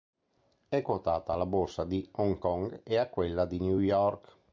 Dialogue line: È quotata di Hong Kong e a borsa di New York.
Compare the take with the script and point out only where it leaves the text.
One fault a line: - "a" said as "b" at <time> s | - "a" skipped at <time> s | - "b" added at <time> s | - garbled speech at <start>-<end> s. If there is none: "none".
- "alla borsa" added at 1.3 s
- "borsa" said as "quella" at 3.1 s